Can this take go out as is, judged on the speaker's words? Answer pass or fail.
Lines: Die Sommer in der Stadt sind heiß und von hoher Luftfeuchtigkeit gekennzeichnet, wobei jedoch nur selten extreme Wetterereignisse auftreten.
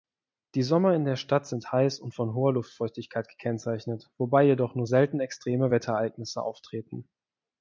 pass